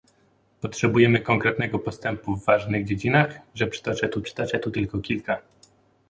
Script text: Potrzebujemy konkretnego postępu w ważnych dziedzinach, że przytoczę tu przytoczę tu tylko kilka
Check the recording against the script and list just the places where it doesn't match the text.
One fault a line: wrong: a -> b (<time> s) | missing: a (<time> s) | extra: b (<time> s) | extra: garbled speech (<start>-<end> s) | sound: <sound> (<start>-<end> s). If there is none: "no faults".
no faults